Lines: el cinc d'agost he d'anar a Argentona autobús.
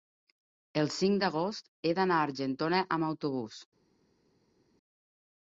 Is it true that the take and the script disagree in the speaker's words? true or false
true